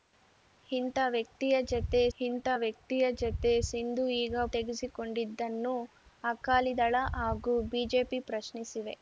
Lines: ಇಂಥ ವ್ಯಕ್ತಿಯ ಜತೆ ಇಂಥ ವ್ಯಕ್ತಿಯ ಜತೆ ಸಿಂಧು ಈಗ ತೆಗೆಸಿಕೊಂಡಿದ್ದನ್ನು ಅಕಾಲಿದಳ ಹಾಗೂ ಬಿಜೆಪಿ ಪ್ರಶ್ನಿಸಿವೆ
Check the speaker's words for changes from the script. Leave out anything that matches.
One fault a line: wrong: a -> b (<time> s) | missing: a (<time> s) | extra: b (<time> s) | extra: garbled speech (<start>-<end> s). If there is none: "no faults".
no faults